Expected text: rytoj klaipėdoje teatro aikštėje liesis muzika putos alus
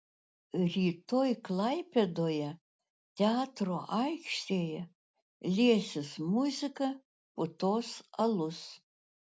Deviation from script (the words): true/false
false